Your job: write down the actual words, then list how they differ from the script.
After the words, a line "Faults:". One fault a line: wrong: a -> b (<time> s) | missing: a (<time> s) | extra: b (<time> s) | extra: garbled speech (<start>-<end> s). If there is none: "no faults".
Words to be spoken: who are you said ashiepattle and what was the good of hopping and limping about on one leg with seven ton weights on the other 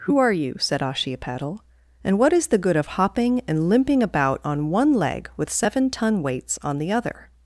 who are you said ashiepattle and what is the good of hopping and limping about on one leg with seven ton weights on the other
Faults:
wrong: was -> is (2.3 s)